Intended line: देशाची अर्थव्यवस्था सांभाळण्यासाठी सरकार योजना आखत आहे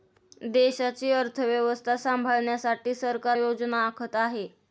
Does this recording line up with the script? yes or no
yes